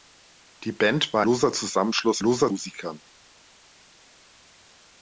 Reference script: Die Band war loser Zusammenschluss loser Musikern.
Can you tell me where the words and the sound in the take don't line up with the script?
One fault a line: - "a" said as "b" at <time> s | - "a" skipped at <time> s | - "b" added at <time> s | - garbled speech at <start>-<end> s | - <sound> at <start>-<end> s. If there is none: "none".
none